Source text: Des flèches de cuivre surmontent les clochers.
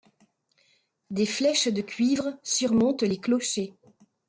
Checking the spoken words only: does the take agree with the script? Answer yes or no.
yes